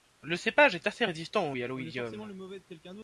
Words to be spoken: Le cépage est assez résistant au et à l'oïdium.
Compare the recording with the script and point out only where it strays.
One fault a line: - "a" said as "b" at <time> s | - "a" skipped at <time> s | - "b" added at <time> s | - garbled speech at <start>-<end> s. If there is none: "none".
none